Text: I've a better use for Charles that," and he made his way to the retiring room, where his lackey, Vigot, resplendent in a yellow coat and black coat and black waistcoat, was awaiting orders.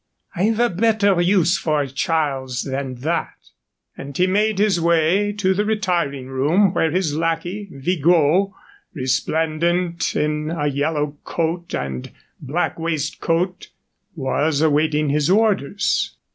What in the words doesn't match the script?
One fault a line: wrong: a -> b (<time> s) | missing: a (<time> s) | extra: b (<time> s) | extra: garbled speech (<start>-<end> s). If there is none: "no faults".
extra: than (2.6 s)
missing: coat and black (12.8 s)
extra: his (15.1 s)